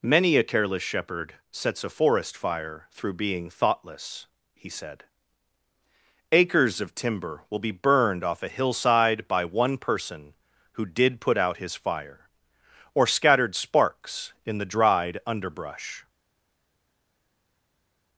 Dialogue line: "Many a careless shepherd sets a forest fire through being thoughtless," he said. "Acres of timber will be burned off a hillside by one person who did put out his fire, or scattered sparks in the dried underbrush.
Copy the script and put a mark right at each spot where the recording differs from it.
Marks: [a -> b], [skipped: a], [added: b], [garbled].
"Many a careless shepherd sets a forest fire through being thoughtless," he said. "Acres of timber will be burned off a hillside by one person who did put out his fire, or scattered sparks in the dried underbrush.